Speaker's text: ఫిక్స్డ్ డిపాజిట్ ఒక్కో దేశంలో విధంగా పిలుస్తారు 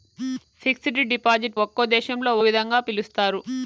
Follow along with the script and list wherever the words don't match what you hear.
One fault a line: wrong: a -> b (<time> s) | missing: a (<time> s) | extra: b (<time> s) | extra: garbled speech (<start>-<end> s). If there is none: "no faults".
no faults